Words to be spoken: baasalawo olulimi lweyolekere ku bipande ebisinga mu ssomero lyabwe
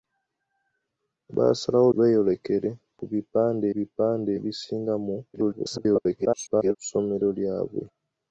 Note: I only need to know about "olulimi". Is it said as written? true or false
false